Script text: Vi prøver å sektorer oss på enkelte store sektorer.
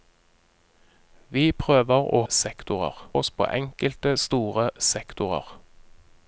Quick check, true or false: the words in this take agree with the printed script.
true